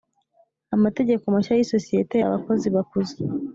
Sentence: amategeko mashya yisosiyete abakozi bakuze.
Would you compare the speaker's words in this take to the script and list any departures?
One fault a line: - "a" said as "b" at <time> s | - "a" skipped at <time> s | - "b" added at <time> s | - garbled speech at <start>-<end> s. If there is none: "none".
none